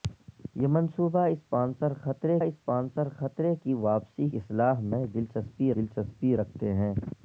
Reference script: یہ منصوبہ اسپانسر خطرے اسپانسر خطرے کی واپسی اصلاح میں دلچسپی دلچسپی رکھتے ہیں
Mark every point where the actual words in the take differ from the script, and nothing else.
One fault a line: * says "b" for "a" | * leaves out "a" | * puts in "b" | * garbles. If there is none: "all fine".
all fine